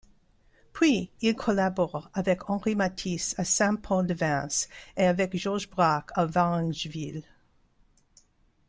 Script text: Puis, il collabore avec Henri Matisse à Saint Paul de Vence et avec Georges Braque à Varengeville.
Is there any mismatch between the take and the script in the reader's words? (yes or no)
no